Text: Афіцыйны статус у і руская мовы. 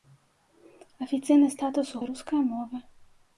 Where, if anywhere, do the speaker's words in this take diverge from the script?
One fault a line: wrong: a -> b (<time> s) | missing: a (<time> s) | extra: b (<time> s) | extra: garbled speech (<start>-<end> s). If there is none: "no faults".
no faults